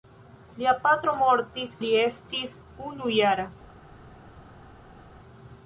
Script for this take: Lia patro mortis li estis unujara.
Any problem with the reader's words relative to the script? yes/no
no